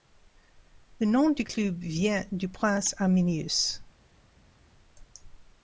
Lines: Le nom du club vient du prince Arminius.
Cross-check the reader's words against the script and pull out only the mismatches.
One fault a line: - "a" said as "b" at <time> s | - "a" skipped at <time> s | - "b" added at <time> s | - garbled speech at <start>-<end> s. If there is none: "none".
none